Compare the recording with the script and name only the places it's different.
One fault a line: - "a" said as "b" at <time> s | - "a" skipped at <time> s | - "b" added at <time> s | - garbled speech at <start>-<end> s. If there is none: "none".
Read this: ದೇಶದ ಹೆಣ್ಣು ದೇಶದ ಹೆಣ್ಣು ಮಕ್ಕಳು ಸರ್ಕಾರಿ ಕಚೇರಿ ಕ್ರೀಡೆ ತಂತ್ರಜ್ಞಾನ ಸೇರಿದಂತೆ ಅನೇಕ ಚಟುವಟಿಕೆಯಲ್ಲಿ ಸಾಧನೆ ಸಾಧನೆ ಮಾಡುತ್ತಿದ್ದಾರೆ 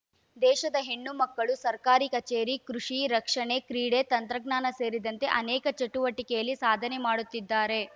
- "ದೇಶದ ಹೆಣ್ಣು" skipped at 1.1 s
- "ಕೃಷಿ ರಕ್ಷಣೆ" added at 2.7 s
- "ಸಾಧನೆ" skipped at 7.0 s